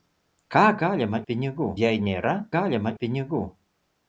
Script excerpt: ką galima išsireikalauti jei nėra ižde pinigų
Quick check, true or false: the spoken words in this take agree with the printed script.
false